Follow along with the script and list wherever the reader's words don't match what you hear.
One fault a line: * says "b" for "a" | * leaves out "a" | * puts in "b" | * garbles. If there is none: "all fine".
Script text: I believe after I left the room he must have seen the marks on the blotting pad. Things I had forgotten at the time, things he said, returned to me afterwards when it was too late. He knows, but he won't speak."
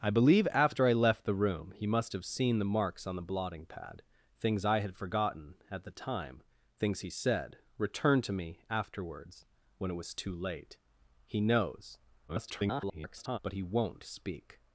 * garbles